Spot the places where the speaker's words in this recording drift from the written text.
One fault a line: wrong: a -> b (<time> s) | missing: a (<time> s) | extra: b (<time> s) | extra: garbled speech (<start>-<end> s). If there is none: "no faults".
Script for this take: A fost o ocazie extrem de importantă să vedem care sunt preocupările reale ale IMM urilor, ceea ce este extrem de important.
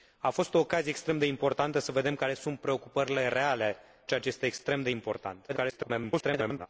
missing: ale IMM urilor (3.8 s)
extra: garbled speech (5.5-6.7 s)